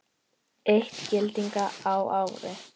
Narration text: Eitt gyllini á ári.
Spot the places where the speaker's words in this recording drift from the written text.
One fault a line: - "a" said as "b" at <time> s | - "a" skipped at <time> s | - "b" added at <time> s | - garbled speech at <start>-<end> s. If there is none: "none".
none